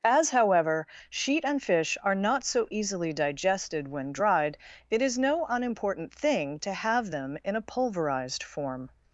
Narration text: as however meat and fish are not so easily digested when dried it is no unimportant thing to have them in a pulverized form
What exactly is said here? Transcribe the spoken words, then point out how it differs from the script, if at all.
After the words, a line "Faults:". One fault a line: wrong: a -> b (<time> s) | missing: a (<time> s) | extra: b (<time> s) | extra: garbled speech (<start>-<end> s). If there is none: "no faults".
as however sheet and fish are not so easily digested when dried it is no unimportant thing to have them in a pulverized form
Faults:
wrong: meat -> sheet (1.1 s)